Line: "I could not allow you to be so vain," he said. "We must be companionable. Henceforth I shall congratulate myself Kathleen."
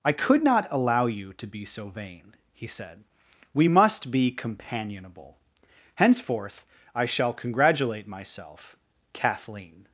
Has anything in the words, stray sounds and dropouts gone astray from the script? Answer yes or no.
no